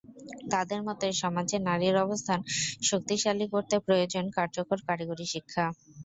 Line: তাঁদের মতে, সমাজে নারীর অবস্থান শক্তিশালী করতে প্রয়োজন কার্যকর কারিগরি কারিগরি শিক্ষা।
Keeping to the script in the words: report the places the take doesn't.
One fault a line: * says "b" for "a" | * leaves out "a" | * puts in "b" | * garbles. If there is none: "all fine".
* leaves out "কারিগরি"